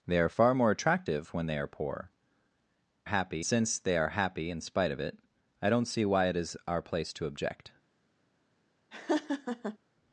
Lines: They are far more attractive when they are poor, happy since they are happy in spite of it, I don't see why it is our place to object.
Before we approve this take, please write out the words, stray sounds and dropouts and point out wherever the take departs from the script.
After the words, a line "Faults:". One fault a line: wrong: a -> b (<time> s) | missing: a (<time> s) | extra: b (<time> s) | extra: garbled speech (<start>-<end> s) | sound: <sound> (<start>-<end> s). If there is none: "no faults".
They are far more attractive when they are poor, happy since they are happy in spite of it, I don't see why it is our place to object.
Faults:
sound: laugh (8.9-9.8 s)